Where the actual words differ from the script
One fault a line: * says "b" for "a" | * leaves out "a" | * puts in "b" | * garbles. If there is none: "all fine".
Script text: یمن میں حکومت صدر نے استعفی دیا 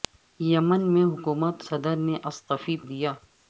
all fine